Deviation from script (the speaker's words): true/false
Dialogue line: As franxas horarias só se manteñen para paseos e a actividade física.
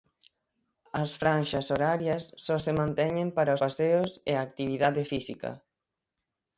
false